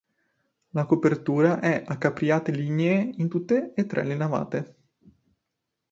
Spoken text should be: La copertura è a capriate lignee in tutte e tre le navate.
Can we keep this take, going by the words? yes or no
yes